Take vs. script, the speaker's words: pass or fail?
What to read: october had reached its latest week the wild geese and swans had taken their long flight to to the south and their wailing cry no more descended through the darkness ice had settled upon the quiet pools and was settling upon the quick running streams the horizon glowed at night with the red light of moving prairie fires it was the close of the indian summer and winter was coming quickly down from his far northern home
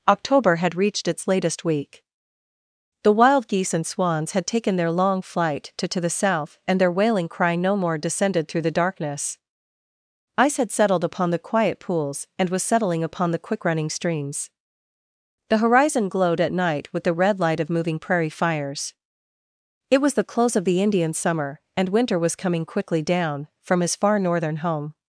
pass